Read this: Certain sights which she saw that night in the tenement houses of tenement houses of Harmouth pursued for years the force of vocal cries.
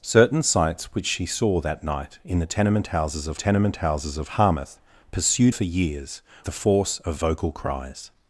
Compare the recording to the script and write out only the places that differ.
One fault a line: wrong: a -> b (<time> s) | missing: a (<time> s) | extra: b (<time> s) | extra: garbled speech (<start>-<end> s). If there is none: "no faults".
no faults